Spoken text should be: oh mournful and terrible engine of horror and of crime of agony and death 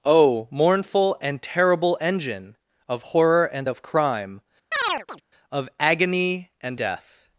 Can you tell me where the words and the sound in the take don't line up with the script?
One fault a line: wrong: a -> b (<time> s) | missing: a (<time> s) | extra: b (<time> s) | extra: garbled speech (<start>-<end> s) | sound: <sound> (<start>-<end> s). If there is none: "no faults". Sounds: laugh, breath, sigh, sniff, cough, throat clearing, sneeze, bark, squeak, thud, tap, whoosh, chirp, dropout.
sound: chirp (4.7-5.2 s)